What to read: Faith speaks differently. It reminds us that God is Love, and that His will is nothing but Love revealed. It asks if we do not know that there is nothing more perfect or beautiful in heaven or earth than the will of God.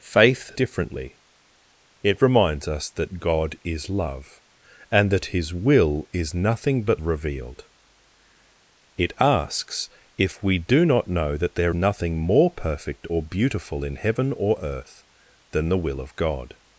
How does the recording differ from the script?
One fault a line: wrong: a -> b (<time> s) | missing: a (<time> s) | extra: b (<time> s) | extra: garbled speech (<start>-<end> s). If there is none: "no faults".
missing: speaks (0.6 s)
missing: Love (7.0 s)
missing: is (11.7 s)